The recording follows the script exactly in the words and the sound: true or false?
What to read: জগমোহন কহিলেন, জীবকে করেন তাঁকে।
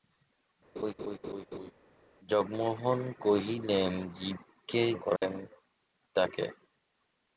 false